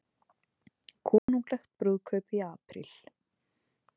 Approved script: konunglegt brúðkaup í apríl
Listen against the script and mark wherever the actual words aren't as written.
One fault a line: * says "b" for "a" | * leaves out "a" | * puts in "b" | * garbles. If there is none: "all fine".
all fine